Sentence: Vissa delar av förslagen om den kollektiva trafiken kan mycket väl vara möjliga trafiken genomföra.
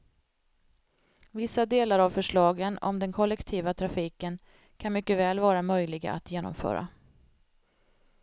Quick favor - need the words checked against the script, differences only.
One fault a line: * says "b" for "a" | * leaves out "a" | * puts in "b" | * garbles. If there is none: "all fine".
* says "att" for "trafiken"